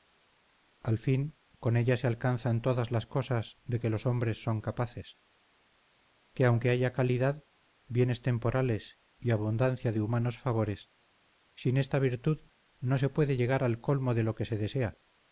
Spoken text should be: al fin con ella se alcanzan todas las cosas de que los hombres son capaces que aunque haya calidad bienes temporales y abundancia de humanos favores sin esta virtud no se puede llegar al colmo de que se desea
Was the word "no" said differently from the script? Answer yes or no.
no